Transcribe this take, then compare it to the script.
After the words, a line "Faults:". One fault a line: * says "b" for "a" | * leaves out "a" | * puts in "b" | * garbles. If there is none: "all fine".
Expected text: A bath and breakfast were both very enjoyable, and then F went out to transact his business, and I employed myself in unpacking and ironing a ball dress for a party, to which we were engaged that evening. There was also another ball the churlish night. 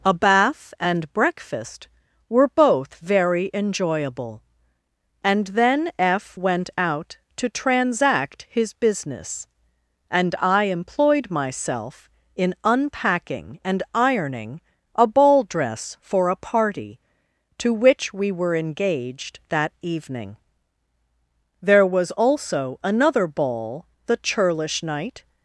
A bath and breakfast were both very enjoyable, and then F went out to transact his business, and I employed myself in unpacking and ironing a ball dress for a party, to which we were engaged that evening. There was also another ball the churlish night.
Faults:
all fine